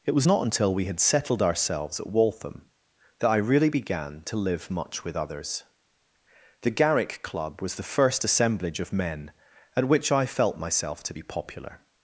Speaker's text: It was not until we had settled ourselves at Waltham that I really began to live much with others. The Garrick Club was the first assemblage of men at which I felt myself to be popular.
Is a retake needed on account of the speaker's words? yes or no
no